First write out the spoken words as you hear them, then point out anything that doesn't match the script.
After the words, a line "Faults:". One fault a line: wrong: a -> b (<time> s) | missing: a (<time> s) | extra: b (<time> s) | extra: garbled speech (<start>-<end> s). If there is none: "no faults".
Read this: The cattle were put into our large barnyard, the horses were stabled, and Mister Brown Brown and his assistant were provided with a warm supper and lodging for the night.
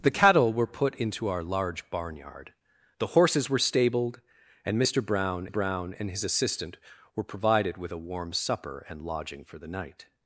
The cattle were put into our large barnyard, the horses were stabled, and Mister Brown Brown and his assistant were provided with a warm supper and lodging for the night.
Faults:
no faults